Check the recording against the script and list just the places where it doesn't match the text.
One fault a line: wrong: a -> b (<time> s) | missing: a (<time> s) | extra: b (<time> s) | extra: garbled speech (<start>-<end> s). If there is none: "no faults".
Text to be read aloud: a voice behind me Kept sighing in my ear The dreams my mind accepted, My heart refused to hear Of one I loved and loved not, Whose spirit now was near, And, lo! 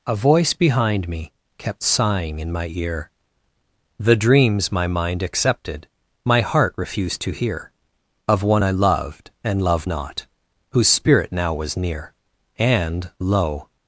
no faults